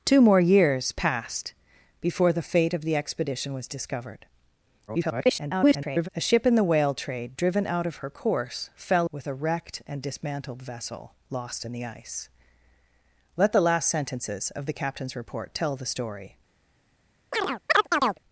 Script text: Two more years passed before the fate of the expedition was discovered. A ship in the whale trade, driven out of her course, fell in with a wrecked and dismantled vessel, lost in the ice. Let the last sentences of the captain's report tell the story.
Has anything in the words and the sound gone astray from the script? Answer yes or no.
yes